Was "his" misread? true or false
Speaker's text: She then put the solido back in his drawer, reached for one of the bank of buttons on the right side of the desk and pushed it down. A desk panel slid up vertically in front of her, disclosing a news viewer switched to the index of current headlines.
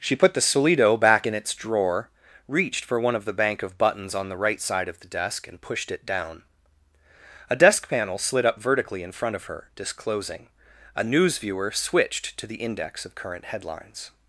true